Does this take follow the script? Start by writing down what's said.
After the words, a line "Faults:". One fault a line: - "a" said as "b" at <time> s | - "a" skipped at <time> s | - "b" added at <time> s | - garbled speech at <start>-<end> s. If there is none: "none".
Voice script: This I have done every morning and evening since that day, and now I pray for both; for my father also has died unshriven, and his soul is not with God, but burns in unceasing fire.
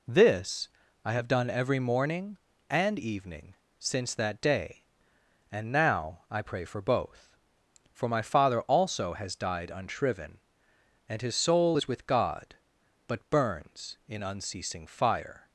This I have done every morning and evening since that day, and now I pray for both; for my father also has died unshriven, and his soul is with God, but burns in unceasing fire.
Faults:
- "not" skipped at 11.9 s